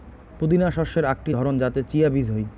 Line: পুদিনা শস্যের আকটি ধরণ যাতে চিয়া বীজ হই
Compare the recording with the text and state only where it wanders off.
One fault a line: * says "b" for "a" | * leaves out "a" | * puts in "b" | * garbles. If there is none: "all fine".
all fine